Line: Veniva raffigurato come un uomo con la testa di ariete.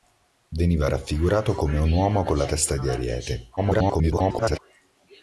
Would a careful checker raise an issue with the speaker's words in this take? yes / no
yes